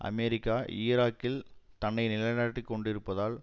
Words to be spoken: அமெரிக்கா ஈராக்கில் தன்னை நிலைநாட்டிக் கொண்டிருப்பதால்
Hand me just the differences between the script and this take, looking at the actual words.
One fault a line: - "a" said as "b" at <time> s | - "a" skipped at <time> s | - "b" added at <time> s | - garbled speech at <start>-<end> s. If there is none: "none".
none